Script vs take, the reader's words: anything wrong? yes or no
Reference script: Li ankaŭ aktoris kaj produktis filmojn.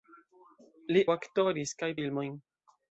yes